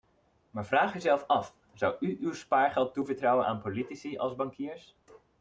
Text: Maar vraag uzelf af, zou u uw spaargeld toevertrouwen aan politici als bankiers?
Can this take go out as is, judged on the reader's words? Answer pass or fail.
pass